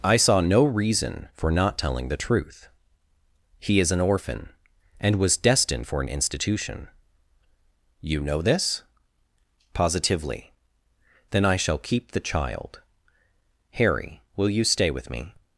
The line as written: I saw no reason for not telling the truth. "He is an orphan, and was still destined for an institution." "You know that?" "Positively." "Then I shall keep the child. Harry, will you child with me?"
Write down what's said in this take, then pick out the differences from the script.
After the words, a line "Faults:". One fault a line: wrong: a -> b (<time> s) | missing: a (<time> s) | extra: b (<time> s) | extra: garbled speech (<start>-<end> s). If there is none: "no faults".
I saw no reason for not telling the truth. "He is an orphan, and was destined for an institution." "You know this?" "Positively." "Then I shall keep the child. Harry, will you stay with me?"
Faults:
missing: still (5.4 s)
wrong: that -> this (8.4 s)
wrong: child -> stay (14.6 s)